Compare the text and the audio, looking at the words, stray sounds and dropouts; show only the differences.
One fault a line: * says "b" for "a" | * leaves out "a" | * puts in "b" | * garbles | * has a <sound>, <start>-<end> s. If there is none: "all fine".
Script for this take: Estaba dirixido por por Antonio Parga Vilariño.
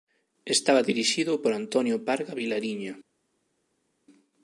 * leaves out "por"